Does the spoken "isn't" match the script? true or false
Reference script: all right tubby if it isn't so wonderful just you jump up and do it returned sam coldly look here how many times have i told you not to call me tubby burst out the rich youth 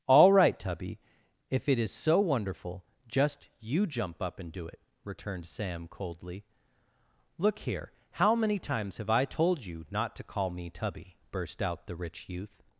false